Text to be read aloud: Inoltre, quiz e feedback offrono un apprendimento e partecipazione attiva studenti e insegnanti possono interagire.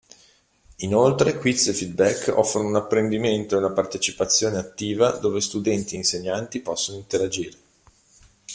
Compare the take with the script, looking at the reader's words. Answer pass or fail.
fail